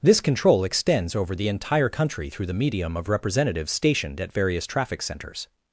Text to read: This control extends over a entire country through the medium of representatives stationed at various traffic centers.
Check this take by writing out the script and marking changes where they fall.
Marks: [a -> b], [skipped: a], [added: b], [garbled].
This control extends over [a -> the] entire country through the medium of representatives stationed at various traffic centers.